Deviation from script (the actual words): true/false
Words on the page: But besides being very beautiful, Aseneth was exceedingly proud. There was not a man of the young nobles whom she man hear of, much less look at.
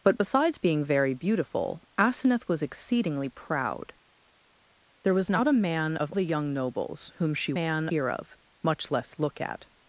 false